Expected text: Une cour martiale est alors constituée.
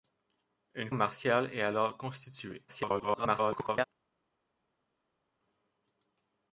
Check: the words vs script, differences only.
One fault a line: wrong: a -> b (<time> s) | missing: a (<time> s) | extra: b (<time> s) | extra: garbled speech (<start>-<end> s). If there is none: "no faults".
missing: cour (0.9 s)
extra: garbled speech (2.7-3.8 s)